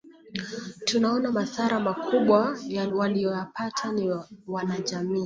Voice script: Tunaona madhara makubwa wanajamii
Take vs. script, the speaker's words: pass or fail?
fail